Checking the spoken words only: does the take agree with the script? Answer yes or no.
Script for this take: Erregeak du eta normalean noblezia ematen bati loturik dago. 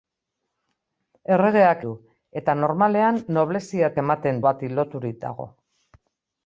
yes